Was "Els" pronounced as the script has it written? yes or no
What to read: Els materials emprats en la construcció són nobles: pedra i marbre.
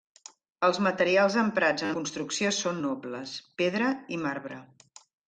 yes